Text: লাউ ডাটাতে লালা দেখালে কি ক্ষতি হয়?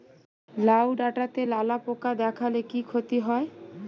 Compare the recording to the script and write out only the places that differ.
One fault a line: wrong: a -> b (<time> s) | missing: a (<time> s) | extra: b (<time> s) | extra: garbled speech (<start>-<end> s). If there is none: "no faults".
extra: পোকা (1.8 s)